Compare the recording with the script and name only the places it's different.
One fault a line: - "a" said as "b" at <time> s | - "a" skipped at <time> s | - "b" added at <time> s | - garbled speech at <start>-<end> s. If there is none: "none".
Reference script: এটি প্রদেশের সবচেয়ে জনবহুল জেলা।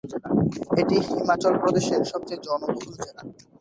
- "হিমাচল" added at 1.1 s